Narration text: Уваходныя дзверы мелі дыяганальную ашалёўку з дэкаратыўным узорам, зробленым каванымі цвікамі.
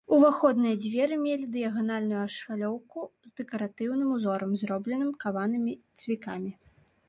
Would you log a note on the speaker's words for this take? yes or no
no